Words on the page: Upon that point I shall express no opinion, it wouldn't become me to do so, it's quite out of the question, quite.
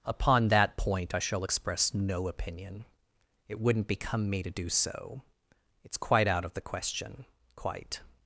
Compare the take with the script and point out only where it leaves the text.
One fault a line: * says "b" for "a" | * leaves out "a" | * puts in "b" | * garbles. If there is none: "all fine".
all fine